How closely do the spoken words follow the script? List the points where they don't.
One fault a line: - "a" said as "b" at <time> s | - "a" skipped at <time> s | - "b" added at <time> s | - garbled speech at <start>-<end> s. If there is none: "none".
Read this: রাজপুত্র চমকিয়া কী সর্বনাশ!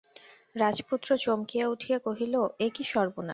- "উঠিয়া কহিল এ" added at 1.7 s